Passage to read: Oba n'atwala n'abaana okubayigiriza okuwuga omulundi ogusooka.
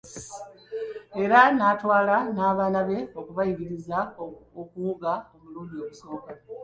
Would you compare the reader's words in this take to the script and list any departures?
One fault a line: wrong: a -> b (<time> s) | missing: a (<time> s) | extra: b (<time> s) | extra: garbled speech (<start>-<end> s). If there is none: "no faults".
wrong: Oba -> Era (1.2 s)
extra: be (2.9 s)